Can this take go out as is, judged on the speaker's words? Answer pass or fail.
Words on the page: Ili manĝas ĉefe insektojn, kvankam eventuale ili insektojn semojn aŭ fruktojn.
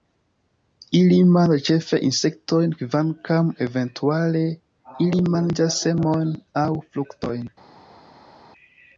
fail